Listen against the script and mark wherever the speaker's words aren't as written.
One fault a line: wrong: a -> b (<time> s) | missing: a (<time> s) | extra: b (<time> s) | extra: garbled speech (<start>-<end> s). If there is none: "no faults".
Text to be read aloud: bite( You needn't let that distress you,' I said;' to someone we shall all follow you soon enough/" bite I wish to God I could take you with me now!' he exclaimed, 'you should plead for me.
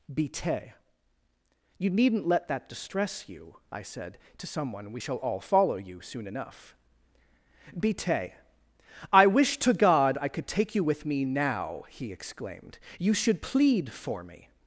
no faults